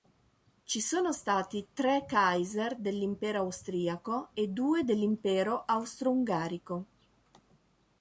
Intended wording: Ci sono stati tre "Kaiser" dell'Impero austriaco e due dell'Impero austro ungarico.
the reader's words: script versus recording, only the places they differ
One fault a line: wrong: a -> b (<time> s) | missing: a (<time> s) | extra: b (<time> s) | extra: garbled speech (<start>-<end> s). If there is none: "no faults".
no faults